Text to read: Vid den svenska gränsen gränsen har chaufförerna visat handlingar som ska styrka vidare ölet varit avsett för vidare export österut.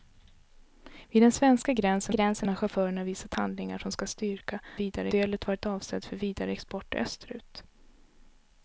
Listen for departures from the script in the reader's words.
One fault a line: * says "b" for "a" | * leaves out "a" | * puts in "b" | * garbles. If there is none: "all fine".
all fine